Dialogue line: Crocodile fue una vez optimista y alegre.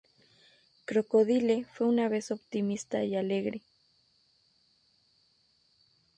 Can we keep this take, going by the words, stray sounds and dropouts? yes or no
yes